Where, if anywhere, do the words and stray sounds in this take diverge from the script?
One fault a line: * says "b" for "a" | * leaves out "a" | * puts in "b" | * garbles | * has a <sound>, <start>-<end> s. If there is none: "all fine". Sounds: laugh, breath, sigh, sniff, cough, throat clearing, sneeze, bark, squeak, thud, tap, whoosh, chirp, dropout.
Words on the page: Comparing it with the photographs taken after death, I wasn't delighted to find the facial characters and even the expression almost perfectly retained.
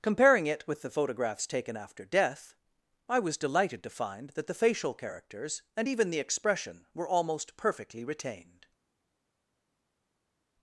* says "was" for "wasn't"
* puts in "that"
* puts in "were"